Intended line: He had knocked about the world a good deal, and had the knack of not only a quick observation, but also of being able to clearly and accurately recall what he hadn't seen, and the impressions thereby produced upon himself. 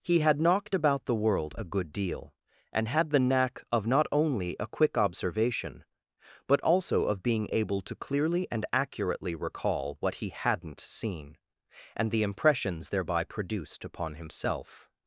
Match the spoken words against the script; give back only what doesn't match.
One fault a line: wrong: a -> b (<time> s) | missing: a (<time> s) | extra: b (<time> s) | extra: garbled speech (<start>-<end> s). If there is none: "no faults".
no faults